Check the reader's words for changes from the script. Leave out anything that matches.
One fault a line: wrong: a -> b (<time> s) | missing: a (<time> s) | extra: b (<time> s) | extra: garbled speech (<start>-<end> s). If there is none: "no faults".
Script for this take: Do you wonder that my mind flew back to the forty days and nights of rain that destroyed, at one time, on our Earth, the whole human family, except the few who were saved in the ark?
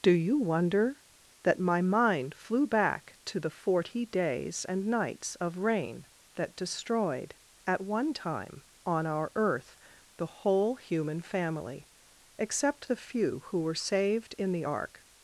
no faults